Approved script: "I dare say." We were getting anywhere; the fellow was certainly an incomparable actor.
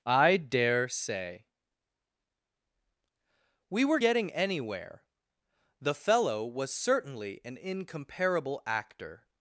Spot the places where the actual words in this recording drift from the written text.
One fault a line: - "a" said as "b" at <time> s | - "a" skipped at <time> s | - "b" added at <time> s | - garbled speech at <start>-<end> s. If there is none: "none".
none